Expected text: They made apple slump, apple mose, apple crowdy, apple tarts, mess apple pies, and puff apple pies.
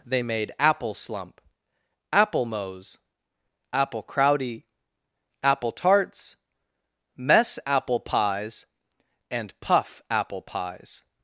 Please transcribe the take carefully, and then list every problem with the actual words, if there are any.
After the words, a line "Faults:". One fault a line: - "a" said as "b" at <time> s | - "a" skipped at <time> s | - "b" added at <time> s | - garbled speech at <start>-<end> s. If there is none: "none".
They made apple slump, apple mose, apple crowdy, apple tarts, mess apple pies, and puff apple pies.
Faults:
none